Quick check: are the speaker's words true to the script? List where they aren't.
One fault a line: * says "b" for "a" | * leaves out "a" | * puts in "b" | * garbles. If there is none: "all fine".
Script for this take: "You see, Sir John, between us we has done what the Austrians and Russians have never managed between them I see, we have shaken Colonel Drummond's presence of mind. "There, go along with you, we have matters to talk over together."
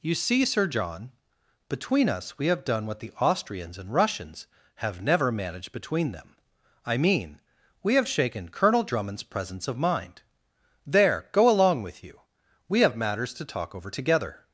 * says "have" for "has"
* says "mean" for "see"